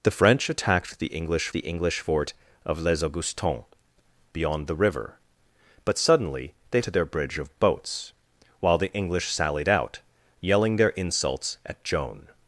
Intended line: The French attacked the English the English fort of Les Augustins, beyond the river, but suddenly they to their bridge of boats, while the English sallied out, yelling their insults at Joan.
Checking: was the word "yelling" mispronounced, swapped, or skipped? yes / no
no